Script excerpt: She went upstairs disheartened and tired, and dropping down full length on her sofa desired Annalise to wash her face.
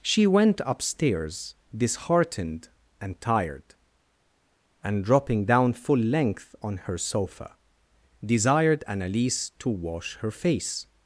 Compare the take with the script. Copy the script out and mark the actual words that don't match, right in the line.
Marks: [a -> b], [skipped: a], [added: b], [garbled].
She went upstairs disheartened and tired, and dropping down full length on her sofa desired Annalise to wash her face.